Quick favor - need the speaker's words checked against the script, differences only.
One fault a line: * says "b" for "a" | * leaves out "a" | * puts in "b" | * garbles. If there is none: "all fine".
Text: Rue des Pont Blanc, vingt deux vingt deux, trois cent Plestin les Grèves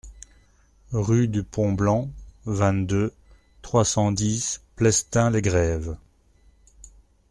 * says "du" for "des"
* leaves out "vingt deux"
* puts in "dix"